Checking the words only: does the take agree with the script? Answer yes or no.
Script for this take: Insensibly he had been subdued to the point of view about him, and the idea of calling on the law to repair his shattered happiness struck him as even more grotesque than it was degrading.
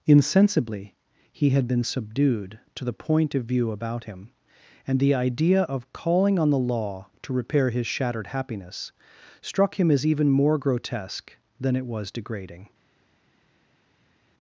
yes